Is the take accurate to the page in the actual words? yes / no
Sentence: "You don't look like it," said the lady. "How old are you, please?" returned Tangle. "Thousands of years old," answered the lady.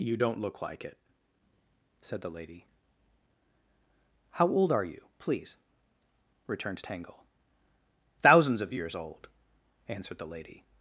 yes